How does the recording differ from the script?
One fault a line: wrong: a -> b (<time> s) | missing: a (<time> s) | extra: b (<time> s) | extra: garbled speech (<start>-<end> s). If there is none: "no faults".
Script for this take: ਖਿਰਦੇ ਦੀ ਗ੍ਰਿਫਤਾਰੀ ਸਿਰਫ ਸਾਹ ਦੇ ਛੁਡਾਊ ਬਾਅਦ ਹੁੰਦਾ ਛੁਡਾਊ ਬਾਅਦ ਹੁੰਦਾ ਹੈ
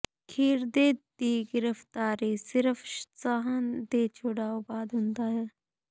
missing: ਛੁਡਾਊ ਬਾਅਦ ਹੁੰਦਾ (5.3 s)